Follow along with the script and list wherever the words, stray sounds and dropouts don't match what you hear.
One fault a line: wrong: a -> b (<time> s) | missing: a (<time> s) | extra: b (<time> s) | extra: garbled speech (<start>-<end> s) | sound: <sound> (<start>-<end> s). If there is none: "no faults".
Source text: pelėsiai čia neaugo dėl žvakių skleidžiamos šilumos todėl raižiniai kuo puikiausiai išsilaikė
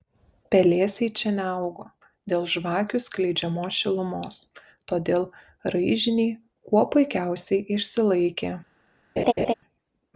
sound: laugh (9.2-9.5 s)